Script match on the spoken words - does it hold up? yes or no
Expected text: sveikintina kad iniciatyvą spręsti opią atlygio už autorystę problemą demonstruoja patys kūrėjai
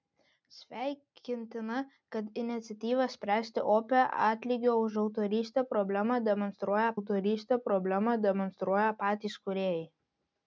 no